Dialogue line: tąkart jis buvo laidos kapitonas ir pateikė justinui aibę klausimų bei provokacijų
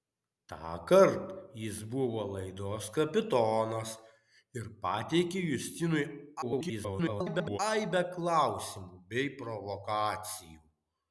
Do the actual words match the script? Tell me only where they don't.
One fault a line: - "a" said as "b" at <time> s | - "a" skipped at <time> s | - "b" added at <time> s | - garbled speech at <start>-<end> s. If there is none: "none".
- garbled speech at 6.4-7.6 s